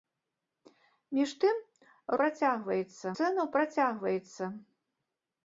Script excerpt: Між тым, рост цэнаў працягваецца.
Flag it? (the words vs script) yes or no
yes